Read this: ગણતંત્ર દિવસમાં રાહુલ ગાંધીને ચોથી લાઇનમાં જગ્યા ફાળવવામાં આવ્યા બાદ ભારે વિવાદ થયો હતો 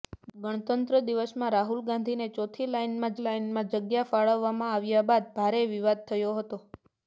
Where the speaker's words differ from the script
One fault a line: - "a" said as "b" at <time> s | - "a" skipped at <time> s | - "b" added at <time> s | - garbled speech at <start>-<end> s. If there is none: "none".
- "લાઇનમાં" added at 3.2 s